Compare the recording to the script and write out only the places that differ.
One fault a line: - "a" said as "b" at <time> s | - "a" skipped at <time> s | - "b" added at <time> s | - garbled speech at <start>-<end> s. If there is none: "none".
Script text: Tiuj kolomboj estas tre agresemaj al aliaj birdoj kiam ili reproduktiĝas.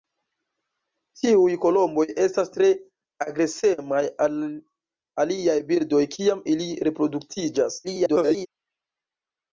- garbled speech at 7.8-8.5 s